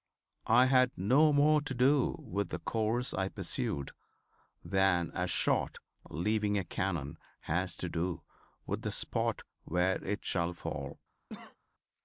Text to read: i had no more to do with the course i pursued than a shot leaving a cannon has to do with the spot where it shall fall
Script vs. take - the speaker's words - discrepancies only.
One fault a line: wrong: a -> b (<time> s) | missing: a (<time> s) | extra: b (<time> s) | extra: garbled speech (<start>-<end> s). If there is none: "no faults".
no faults